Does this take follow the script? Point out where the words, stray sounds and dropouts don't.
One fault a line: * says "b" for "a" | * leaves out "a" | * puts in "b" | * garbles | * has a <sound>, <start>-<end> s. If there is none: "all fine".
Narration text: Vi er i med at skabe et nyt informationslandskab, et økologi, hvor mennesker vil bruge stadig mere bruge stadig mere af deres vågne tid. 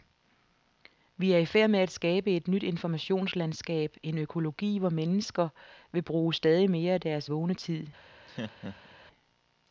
* puts in "færd"
* says "en" for "et"
* leaves out "bruge stadig mere"
* has a laugh, 8.3-9.0 s